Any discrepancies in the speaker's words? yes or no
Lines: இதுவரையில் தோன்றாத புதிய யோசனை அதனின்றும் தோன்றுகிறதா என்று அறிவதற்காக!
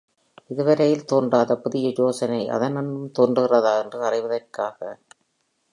no